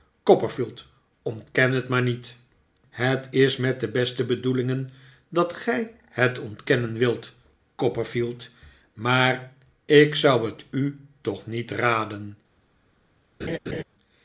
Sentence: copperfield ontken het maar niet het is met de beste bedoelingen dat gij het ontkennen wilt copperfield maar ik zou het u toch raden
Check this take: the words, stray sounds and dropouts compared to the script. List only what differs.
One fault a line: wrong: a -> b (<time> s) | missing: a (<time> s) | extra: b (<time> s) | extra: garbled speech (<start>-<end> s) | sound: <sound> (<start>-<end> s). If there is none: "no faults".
extra: niet (11.4 s)
sound: laugh (13.4-13.8 s)